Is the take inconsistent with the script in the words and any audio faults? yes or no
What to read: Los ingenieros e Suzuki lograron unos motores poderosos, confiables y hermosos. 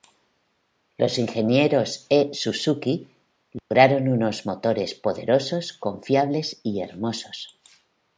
yes